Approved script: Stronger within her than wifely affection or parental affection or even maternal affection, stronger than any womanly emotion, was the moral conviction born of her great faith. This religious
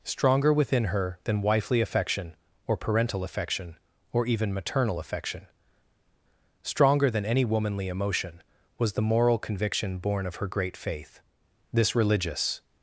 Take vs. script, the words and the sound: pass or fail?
pass